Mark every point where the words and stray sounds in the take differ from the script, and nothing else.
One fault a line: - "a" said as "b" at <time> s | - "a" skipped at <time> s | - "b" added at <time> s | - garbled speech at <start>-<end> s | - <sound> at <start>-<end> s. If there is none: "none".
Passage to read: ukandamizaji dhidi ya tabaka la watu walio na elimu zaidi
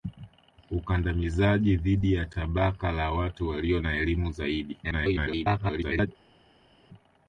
- garbled speech at 4.8-6.1 s